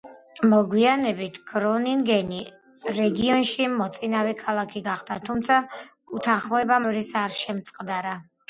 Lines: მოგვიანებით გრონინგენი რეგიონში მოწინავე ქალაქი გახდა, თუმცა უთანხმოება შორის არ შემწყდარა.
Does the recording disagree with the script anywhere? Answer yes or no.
no